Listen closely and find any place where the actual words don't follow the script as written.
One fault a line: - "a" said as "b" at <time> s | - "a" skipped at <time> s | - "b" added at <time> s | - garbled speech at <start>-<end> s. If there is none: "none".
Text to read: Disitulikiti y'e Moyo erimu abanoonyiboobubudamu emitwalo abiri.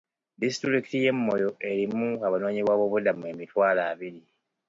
none